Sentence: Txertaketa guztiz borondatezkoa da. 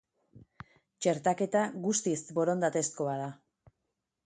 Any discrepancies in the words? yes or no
no